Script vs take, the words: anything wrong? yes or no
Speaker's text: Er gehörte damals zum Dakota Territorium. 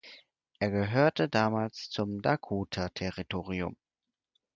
no